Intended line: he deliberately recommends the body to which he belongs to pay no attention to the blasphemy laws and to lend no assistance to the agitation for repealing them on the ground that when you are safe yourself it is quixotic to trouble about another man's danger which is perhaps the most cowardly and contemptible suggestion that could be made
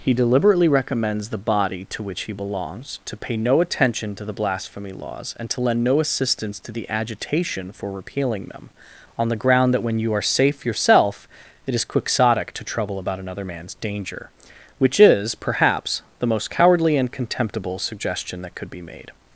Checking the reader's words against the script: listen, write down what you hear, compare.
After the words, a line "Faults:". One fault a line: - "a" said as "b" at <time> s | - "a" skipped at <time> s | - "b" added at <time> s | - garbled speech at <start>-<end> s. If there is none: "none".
he deliberately recommends the body to which he belongs to pay no attention to the blasphemy laws and to lend no assistance to the agitation for repealing them on the ground that when you are safe yourself it is quixotic to trouble about another man's danger which is perhaps the most cowardly and contemptible suggestion that could be made
Faults:
none